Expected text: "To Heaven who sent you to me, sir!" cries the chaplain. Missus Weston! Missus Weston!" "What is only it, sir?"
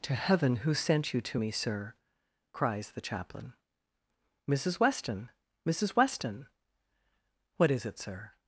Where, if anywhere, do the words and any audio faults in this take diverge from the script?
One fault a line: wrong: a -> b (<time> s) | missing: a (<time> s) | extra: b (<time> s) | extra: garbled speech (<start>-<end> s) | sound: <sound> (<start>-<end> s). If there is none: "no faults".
missing: only (7.8 s)